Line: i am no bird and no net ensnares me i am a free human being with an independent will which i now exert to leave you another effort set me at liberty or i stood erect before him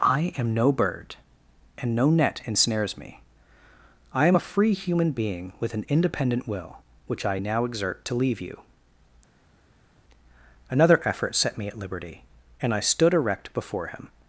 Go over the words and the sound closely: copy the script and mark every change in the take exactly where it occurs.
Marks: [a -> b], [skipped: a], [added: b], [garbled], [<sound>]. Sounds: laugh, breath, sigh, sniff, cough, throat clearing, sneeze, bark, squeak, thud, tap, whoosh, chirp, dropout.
i am no bird and no net ensnares me i am a free human being with an independent will which i now exert to leave you another effort set me at liberty [or -> and] i stood erect before him